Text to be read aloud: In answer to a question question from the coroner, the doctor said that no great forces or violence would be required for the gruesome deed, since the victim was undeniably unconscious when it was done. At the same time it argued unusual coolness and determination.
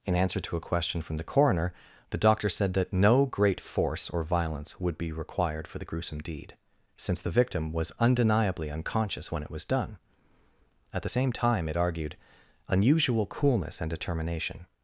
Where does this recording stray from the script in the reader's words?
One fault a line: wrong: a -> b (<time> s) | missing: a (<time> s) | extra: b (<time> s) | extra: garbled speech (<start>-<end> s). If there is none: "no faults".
missing: question (1.0 s)
wrong: forces -> force (3.6 s)